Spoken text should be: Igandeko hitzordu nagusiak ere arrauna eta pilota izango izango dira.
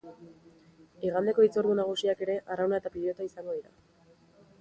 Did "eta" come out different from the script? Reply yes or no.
no